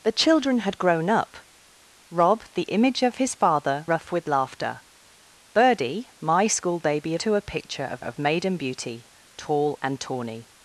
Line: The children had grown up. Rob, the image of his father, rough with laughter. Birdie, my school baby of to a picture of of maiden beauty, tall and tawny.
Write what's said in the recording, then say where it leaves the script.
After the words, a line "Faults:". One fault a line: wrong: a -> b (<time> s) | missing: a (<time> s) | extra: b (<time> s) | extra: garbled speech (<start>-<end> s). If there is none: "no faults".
The children had grown up. Rob, the image of his father, rough with laughter. Birdie, my school baby of to a picture of of maiden beauty, tall and tawny.
Faults:
no faults